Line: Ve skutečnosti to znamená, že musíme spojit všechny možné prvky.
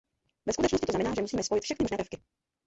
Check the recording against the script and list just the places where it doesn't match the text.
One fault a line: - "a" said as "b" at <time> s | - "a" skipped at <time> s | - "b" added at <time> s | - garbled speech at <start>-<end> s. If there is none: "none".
none